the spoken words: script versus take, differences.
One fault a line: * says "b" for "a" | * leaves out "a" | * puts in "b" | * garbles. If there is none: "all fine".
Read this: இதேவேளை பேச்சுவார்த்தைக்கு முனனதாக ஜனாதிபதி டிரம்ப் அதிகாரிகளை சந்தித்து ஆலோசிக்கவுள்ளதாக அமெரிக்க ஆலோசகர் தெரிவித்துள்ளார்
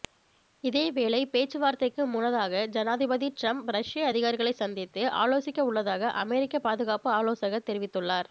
* puts in "ரஷ்ய"
* puts in "பாதுகாப்பு"